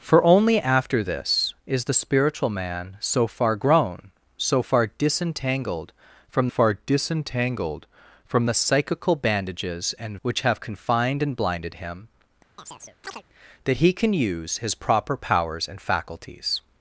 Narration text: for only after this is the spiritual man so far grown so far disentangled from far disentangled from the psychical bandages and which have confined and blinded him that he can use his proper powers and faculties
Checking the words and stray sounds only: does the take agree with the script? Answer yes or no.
no